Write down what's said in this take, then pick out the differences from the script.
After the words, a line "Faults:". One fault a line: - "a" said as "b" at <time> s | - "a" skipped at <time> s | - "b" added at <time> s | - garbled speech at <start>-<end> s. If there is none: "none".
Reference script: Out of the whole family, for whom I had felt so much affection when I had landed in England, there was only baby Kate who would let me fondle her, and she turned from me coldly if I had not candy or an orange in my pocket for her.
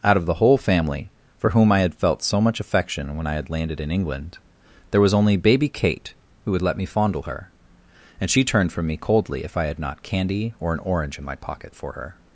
Out of the whole family, for whom I had felt so much affection when I had landed in England, there was only baby Kate who would let me fondle her, and she turned from me coldly if I had not candy or an orange in my pocket for her.
Faults:
none